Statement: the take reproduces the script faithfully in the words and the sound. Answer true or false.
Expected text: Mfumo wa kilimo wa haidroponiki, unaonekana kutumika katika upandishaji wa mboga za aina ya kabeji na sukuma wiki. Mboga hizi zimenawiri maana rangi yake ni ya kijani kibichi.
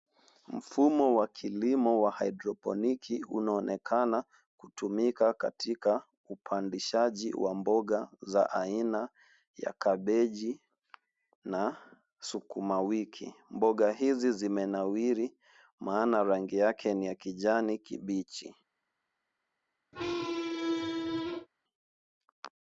false